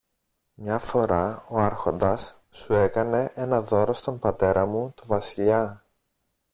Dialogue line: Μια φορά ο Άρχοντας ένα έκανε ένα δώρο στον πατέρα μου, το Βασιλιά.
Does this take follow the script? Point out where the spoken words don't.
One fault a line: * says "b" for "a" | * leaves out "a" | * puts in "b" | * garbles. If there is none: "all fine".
* says "σου" for "ένα"